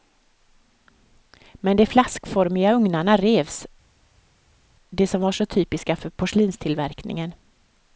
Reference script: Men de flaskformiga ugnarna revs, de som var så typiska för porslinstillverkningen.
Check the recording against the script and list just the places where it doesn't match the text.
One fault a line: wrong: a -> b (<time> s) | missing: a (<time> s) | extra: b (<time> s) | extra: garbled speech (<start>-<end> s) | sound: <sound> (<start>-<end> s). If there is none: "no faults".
no faults